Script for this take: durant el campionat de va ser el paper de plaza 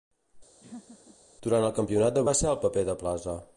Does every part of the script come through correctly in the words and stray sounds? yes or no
no